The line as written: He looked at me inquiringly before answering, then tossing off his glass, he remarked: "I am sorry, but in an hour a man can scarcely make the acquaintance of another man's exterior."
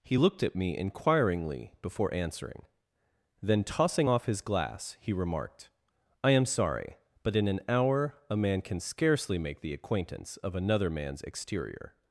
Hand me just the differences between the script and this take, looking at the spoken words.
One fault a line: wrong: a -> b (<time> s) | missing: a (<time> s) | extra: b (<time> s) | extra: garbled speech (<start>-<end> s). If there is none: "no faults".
no faults